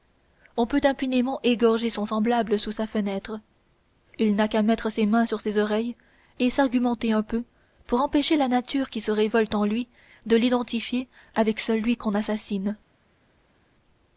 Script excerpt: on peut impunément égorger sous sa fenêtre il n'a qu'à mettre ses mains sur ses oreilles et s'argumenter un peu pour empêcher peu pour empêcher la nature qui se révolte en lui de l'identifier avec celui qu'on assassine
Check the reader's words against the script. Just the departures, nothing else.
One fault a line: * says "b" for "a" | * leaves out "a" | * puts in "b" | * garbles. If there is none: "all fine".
* puts in "son semblable"
* leaves out "peu pour empêcher"